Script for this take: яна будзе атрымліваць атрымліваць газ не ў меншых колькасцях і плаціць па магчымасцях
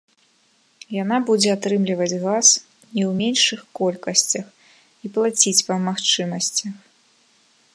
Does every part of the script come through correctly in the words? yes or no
no